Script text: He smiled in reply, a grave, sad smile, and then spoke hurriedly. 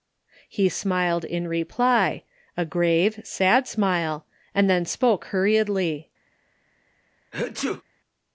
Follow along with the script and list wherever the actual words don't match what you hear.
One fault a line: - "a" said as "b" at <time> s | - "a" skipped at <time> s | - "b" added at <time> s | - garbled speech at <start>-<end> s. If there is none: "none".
none